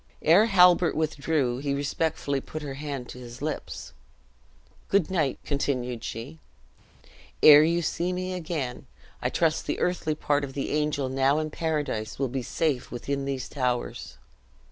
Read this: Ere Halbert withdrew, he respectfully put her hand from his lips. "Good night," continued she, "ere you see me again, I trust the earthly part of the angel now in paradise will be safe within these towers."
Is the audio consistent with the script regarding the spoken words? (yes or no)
no